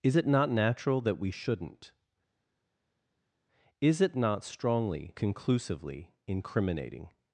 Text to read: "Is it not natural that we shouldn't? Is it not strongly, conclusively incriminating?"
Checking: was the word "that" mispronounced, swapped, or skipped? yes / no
no